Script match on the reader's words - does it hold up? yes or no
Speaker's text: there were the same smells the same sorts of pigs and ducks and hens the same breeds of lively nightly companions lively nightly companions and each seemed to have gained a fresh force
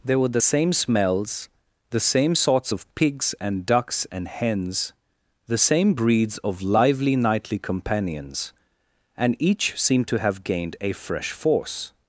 no